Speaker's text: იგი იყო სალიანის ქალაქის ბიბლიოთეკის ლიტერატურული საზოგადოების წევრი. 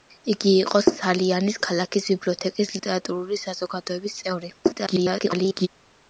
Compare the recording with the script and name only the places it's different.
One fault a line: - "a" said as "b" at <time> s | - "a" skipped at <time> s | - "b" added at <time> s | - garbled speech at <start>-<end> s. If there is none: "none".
- garbled speech at 4.6-5.7 s